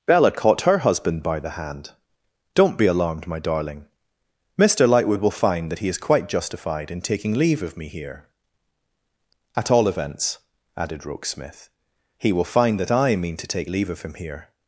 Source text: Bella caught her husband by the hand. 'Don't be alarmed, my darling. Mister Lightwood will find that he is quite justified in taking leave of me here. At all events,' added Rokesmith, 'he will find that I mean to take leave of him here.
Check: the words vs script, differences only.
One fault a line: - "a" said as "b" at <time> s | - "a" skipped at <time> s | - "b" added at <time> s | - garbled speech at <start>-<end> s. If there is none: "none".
none